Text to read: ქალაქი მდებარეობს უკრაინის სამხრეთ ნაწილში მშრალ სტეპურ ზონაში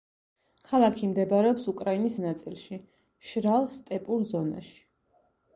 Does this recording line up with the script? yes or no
no